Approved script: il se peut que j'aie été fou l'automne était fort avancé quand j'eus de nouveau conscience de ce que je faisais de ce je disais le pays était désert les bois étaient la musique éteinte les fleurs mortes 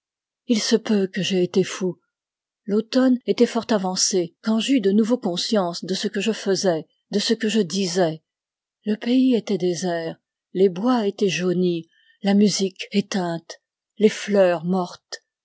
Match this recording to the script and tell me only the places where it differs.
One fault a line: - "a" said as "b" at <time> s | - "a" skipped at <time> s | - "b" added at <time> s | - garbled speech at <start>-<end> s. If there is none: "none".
- "que" added at 7.3 s
- "jaunis" added at 11.3 s